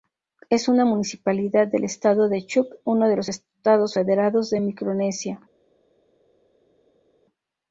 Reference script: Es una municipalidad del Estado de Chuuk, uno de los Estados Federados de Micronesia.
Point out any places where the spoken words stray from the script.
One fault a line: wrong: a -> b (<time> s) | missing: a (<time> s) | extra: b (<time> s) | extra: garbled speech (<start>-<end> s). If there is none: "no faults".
no faults